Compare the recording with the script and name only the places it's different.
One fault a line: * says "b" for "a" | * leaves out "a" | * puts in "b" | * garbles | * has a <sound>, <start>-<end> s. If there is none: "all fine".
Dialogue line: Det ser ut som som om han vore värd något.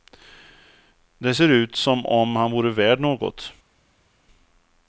* leaves out "som"